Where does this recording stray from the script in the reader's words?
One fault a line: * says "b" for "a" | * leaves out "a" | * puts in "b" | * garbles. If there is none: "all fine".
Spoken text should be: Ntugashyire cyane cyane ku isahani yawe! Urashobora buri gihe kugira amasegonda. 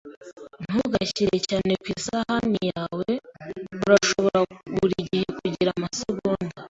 * leaves out "cyane"